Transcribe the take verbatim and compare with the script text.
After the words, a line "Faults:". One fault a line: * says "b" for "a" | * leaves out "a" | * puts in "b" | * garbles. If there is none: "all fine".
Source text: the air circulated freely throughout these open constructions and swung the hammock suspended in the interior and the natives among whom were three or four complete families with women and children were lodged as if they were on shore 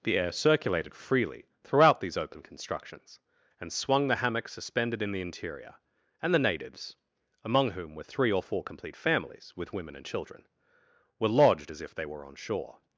the air circulated freely throughout these open constructions and swung the hammock suspended in the interior and the natives among whom were three or four complete families with women and children were lodged as if they were on shore
Faults:
all fine